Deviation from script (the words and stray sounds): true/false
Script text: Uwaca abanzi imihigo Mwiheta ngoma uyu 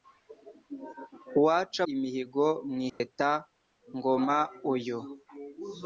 true